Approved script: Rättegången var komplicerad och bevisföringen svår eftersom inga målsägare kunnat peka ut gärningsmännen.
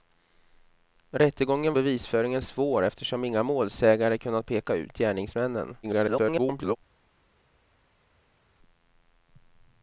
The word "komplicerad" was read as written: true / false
false